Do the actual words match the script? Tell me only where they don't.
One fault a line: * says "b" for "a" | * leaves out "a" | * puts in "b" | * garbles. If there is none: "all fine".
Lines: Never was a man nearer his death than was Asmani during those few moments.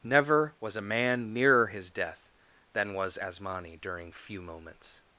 * leaves out "those"